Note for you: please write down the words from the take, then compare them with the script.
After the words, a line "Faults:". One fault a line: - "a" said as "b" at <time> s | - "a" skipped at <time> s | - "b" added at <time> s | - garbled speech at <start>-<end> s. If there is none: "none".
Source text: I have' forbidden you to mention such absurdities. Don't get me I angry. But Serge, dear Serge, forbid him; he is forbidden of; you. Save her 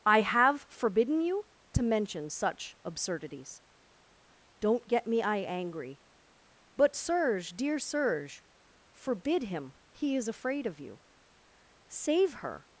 I have' forbidden you to mention such absurdities. Don't get me I angry. But Serge, dear Serge, forbid him; he is afraid of; you. Save her
Faults:
- "forbidden" said as "afraid" at 10.3 s